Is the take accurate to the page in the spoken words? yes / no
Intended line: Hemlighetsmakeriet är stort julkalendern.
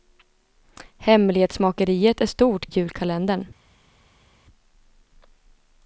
yes